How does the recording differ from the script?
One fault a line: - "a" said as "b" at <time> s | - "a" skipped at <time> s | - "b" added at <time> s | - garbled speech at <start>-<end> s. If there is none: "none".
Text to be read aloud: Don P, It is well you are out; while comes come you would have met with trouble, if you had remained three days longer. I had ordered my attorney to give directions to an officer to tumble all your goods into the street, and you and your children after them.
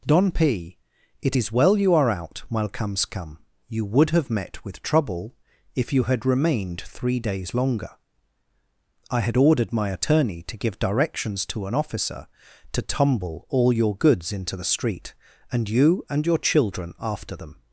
none